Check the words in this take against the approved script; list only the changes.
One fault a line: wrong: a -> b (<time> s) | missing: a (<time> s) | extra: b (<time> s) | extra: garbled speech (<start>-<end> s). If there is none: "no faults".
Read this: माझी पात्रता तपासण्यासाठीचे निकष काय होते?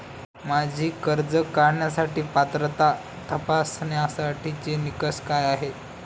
extra: कर्ज काढण्यासाठी (1.0 s)
wrong: होते -> आहेत (5.5 s)